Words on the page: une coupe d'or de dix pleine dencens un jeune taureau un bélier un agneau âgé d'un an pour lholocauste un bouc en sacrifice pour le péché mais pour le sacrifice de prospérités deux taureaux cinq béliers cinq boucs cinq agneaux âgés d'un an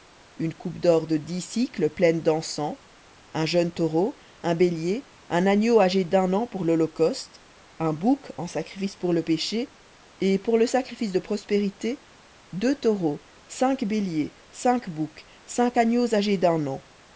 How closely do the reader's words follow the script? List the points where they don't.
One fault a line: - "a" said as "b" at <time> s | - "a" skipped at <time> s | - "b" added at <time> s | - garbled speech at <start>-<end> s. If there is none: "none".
- "mais" said as "et" at 10.2 s